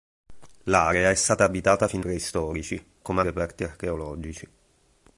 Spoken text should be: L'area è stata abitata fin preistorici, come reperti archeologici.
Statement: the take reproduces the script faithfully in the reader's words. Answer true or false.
true